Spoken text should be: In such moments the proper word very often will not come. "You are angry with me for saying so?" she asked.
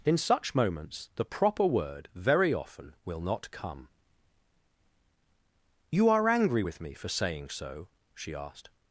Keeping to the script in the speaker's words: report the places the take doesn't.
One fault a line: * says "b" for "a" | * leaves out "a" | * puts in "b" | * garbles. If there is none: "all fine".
all fine